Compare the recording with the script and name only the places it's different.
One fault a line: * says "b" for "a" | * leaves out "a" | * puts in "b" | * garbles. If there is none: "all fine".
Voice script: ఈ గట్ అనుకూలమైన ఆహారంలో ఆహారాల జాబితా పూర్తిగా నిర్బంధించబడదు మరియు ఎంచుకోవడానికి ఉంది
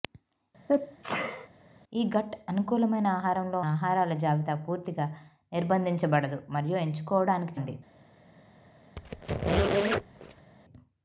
all fine